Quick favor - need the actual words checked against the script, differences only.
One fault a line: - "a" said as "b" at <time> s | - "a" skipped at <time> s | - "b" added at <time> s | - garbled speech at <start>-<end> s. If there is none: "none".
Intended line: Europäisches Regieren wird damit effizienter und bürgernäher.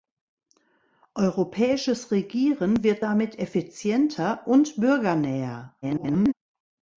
- garbled speech at 5.8-6.3 s